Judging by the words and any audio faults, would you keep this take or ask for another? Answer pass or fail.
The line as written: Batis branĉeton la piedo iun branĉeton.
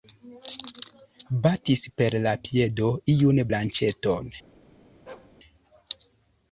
fail